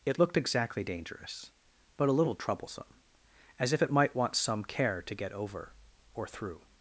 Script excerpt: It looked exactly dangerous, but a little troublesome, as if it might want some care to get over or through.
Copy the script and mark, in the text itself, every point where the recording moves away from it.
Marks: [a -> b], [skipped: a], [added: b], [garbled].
It looked exactly dangerous, but a little troublesome, as if it might want some care to get over or through.